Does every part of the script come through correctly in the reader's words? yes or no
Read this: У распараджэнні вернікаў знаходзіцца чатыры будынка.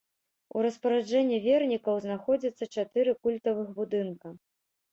no